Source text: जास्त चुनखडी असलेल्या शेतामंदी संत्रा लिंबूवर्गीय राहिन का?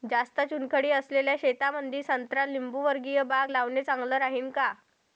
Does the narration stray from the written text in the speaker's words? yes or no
yes